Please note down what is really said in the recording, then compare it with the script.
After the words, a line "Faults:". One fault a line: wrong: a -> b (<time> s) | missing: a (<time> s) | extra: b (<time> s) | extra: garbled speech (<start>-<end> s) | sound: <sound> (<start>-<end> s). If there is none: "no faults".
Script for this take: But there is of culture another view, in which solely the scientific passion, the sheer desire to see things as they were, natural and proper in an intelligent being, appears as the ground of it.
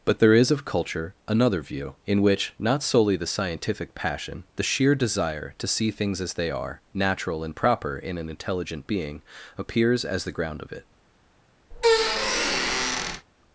But there is of culture another view, in which not solely the scientific passion, the sheer desire to see things as they are, natural and proper in an intelligent being, appears as the ground of it.
Faults:
extra: not (2.6 s)
wrong: were -> are (6.5 s)
sound: squeak (11.7-13.3 s)